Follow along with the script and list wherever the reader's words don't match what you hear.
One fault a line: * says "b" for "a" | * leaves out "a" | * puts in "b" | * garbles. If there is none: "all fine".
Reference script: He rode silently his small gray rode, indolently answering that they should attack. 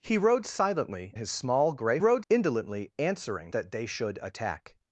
all fine